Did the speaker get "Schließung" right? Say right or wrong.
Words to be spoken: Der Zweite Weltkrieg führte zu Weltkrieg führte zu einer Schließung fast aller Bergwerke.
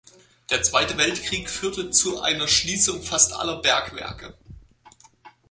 right